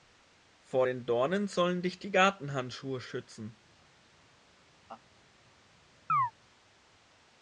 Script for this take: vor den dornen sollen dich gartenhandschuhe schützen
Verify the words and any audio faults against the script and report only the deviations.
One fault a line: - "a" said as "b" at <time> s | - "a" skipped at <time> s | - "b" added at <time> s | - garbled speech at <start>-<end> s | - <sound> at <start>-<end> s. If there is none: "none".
- "die" added at 2.0 s
- laugh at 4.9-5.0 s
- chirp at 6.1-6.3 s